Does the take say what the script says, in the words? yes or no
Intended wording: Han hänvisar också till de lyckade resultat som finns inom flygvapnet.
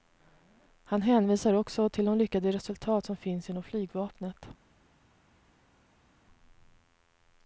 yes